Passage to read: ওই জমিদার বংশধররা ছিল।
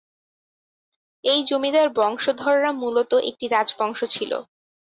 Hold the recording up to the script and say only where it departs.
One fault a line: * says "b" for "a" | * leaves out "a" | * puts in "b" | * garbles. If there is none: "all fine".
* says "এই" for "ওই"
* puts in "মূলত একটি রাজবংশ"